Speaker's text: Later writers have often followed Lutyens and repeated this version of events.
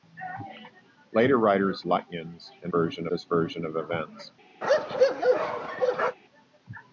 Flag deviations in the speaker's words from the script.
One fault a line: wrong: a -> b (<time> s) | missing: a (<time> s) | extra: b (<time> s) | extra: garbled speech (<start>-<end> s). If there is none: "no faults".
missing: have often followed (1.8 s)
wrong: repeated -> version (2.7 s)